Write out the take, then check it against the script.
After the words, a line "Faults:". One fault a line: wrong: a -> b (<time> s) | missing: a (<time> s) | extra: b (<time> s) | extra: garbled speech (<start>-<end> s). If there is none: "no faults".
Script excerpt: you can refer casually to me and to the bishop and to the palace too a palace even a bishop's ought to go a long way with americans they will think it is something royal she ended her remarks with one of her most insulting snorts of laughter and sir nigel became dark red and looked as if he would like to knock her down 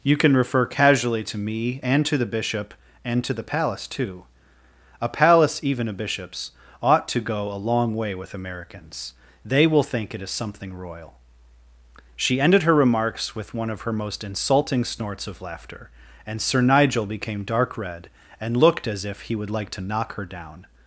you can refer casually to me and to the bishop and to the palace too a palace even a bishop's ought to go a long way with americans they will think it is something royal she ended her remarks with one of her most insulting snorts of laughter and sir nigel became dark red and looked as if he would like to knock her down
Faults:
no faults